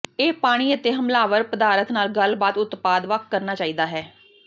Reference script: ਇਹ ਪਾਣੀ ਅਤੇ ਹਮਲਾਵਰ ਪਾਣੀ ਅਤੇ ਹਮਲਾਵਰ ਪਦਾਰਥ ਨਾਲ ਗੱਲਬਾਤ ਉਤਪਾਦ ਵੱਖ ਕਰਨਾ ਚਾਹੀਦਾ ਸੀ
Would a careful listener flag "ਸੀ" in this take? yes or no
yes